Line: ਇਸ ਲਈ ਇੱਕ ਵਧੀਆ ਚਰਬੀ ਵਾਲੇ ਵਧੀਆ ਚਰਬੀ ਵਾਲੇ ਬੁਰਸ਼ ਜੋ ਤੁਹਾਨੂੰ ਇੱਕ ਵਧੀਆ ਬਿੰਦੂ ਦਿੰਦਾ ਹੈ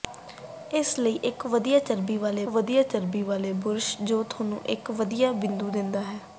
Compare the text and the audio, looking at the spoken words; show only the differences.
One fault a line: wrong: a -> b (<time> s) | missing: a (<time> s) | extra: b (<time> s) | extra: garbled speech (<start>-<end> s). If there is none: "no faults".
no faults